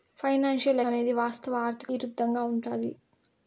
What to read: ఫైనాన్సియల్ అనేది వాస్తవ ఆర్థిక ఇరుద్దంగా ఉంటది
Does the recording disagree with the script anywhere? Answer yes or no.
no